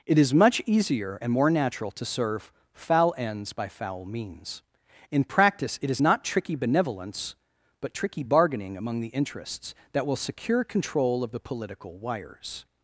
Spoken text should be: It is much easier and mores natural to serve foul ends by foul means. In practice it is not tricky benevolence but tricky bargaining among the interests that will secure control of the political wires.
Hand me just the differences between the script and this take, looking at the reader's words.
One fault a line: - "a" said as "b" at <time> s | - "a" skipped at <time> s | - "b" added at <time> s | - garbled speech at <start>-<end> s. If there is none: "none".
- "mores" said as "more" at 1.3 s